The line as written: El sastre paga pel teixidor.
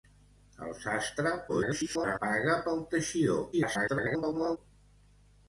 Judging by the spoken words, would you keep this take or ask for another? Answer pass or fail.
fail